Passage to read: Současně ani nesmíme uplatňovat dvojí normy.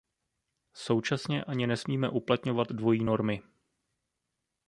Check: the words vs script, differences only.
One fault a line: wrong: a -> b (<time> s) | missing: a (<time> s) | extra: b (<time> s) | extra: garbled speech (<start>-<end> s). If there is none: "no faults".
no faults